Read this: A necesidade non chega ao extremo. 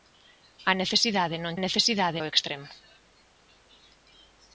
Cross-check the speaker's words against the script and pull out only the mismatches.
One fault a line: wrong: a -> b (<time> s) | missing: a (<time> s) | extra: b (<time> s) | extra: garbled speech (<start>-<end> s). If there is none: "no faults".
wrong: chega -> necesidade (1.6 s)